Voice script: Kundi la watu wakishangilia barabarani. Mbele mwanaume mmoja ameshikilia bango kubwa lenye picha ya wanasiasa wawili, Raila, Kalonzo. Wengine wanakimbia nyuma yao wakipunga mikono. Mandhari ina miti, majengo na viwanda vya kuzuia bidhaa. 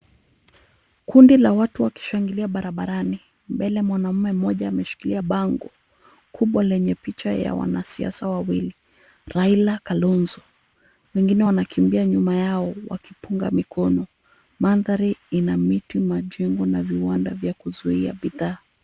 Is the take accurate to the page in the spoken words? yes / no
yes